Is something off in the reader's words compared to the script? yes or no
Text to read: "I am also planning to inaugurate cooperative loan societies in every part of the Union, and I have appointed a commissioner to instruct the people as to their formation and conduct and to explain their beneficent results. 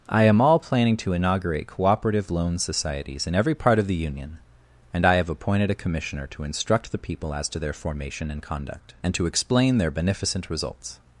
yes